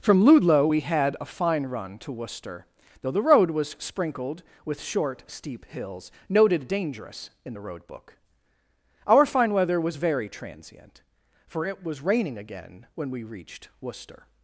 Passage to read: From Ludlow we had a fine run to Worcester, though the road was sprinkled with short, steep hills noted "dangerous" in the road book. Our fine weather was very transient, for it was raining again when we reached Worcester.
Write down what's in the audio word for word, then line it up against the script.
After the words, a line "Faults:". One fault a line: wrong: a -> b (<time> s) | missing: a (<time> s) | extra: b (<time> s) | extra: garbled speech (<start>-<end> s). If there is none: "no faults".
From Ludlow we had a fine run to Worcester, though the road was sprinkled with short, steep hills noted "dangerous" in the road book. Our fine weather was very transient, for it was raining again when we reached Worcester.
Faults:
no faults